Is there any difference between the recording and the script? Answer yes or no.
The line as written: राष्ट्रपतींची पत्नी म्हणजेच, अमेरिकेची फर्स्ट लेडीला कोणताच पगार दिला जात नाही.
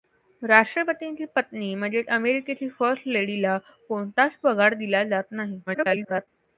yes